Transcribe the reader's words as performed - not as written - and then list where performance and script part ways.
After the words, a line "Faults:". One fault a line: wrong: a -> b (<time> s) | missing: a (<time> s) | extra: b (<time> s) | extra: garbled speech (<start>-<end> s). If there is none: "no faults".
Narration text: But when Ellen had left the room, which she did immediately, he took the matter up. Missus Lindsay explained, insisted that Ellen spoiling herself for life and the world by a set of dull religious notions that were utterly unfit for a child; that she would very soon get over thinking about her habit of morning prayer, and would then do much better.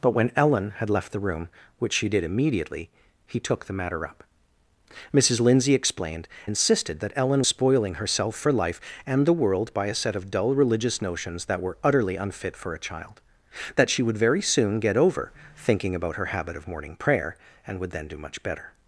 But when Ellen had left the room, which she did immediately, he took the matter up. Missus Lindsay explained, insisted that Ellen spoiling herself for life and the world by a set of dull religious notions that were utterly unfit for a child; that she would very soon get over thinking about her habit of morning prayer, and would then do much better.
Faults:
no faults